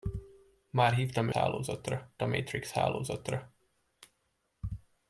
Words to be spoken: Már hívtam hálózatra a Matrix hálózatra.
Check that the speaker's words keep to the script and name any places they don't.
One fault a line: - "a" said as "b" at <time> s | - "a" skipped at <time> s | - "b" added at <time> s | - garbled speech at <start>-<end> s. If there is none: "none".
none